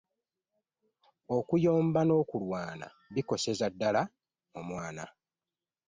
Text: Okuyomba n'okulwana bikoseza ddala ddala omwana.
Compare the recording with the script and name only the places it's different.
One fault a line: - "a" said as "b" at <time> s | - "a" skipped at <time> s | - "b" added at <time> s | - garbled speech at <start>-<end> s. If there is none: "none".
- "ddala" skipped at 4.0 s